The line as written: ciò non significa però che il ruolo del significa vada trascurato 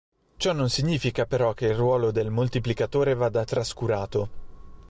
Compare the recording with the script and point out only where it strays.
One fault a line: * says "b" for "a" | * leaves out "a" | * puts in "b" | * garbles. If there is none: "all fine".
* says "moltiplicatore" for "significa"